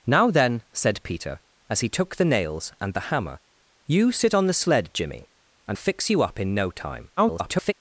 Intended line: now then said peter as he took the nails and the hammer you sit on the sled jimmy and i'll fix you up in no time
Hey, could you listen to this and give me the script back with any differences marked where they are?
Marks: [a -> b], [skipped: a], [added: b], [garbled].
now then said peter as he took the nails and the hammer you sit on the sled jimmy and [skipped: i'll] fix you up in no time [garbled]